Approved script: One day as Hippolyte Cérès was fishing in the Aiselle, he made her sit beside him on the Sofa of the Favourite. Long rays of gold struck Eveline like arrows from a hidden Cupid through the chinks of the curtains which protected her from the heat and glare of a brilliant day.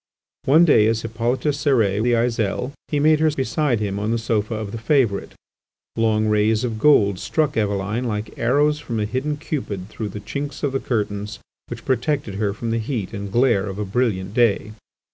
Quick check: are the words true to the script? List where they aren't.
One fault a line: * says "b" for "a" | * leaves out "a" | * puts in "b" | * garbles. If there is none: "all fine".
* leaves out "was fishing in"
* leaves out "sit"